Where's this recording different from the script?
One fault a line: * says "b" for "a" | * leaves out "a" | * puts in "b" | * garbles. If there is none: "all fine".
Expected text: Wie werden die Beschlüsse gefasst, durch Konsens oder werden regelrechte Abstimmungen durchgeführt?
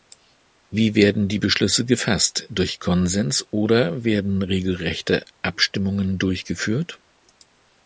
all fine